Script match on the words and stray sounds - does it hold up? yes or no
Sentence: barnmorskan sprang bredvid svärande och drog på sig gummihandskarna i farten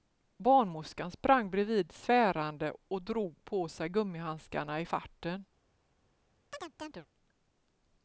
no